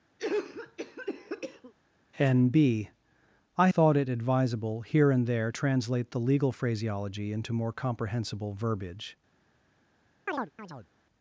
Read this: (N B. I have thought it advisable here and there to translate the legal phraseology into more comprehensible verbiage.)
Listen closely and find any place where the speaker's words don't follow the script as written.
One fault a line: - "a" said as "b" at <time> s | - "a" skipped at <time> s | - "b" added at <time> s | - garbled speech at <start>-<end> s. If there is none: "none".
- "have" skipped at 3.7 s
- "to" skipped at 5.5 s